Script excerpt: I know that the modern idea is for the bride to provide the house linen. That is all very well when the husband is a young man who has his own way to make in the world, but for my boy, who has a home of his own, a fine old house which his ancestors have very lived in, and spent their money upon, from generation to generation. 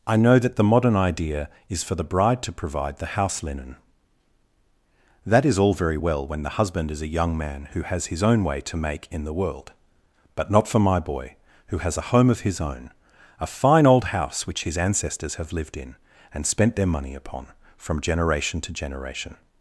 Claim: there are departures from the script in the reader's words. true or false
true